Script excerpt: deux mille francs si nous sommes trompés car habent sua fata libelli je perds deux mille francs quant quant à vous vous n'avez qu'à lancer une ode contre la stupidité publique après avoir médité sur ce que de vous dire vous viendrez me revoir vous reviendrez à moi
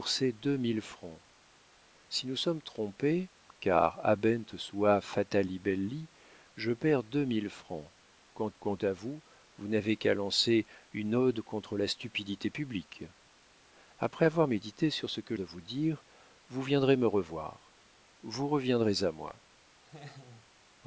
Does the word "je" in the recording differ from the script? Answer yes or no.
no